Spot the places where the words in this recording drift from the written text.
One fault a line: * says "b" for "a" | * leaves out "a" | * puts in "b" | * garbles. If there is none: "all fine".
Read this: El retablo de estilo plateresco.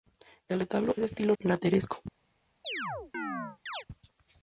all fine